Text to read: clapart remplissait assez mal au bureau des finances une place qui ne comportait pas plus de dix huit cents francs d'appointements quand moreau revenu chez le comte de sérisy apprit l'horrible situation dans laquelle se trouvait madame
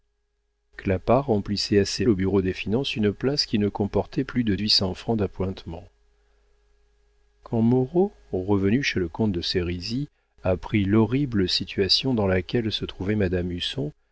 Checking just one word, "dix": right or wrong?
wrong